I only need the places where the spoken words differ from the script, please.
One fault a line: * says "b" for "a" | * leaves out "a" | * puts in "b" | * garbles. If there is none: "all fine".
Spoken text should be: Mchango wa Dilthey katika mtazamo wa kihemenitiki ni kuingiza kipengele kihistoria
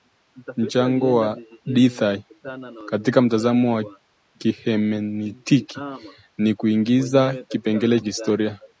all fine